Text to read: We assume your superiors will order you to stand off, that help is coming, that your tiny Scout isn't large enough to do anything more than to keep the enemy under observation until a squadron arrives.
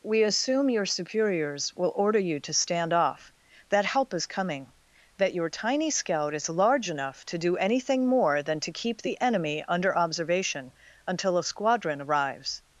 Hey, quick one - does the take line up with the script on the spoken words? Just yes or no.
no